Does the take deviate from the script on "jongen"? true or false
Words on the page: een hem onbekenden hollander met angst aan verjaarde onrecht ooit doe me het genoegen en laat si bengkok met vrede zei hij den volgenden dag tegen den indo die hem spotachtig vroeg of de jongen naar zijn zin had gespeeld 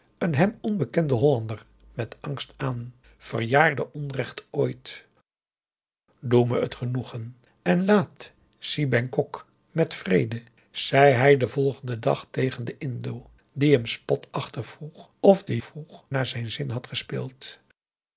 true